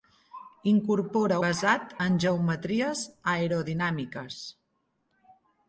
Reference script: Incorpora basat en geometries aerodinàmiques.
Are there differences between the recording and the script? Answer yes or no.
no